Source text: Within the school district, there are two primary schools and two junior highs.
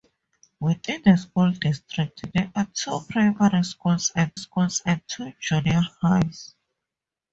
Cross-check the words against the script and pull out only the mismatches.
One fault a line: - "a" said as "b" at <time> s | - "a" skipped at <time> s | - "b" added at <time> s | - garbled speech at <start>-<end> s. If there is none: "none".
- "schools and" added at 4.4 s